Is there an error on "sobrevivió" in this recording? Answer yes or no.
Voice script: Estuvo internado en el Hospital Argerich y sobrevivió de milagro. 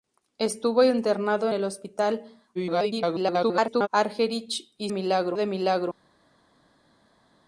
yes